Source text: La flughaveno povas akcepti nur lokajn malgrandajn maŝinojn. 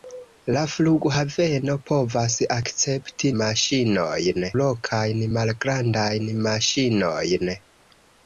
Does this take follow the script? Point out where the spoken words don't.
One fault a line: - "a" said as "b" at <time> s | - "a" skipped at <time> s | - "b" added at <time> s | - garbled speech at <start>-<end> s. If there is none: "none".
- "nur" said as "maŝinojn" at 3.4 s